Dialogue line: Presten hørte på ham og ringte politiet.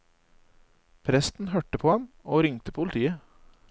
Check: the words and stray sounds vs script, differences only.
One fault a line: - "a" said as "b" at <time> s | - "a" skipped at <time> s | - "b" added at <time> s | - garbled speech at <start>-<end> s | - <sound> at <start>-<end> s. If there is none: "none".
none